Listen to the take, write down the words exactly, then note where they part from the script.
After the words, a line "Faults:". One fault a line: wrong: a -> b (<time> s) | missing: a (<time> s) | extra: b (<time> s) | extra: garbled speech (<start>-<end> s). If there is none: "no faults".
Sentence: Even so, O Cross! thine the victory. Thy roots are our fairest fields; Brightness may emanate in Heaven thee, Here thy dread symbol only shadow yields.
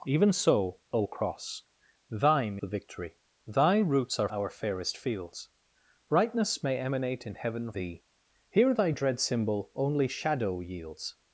Even so, O Cross! thine the victory. Thy roots are our fairest fields; Brightness may emanate in Heaven thee, Here thy dread symbol only shadow yields.
Faults:
no faults